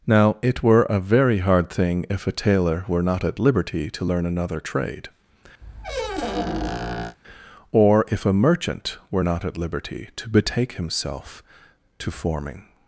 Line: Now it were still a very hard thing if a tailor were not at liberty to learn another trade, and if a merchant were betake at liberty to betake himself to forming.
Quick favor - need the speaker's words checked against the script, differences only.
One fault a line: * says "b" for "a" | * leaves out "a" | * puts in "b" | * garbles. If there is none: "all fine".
* leaves out "still"
* says "or" for "and"
* says "not" for "betake"